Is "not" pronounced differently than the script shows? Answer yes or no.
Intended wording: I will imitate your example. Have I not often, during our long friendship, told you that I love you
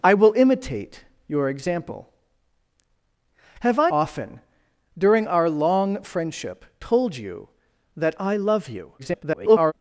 yes